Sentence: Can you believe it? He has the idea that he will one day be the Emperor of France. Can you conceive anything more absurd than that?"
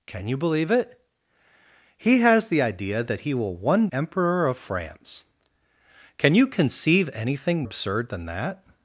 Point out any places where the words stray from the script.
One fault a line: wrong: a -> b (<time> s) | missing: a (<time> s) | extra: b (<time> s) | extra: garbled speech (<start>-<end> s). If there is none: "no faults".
missing: day be the (3.9 s)
missing: more (7.6 s)